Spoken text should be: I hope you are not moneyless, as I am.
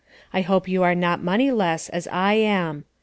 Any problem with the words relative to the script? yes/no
no